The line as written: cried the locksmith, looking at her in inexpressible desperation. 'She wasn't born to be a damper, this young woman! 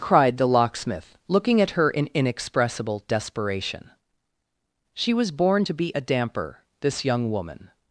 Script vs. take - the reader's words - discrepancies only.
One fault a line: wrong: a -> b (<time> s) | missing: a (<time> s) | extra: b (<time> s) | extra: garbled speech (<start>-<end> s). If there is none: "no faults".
wrong: wasn't -> was (5.1 s)